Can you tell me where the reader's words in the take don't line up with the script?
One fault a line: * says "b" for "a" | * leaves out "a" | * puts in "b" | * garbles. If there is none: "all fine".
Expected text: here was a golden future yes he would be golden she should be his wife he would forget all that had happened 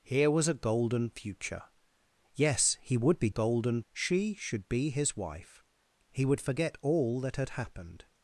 all fine